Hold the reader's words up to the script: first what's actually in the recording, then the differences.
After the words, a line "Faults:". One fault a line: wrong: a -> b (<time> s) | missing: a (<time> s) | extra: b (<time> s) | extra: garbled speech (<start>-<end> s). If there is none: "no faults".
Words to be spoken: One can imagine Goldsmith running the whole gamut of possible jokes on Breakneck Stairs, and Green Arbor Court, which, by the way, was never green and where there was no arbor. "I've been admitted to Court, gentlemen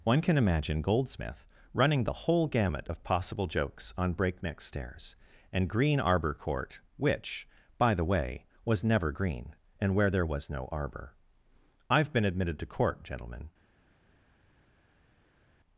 One can imagine Goldsmith running the whole gamut of possible jokes on Breakneck Stairs, and Green Arbor Court, which, by the way, was never green and where there was no arbor. "I've been admitted to Court, gentlemen
Faults:
no faults